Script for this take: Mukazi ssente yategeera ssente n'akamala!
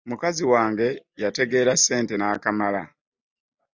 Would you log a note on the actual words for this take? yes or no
yes